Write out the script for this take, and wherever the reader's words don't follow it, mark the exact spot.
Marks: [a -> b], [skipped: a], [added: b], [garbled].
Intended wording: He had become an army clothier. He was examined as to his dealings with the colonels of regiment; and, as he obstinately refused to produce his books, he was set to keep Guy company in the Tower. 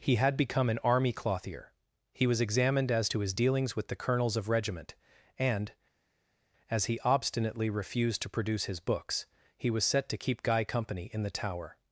He had become an army clothier. He was examined as to his dealings with the colonels of regiment; and, as he obstinately refused to produce his books, he was set to keep Guy company in the Tower.